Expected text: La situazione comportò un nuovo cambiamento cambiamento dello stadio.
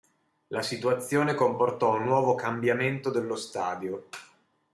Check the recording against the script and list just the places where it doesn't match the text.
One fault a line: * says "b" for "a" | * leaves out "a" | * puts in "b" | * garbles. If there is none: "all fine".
* leaves out "cambiamento"